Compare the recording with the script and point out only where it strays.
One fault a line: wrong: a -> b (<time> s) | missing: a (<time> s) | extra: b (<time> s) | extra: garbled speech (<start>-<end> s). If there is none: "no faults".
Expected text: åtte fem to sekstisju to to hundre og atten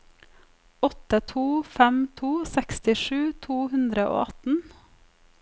extra: to (1.3 s)
missing: to (3.6 s)